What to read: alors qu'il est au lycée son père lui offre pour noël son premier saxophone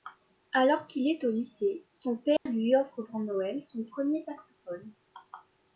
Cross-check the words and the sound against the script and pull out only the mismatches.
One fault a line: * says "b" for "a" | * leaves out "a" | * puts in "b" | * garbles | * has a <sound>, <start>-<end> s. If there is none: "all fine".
* has a dropout, 2.4-2.5 s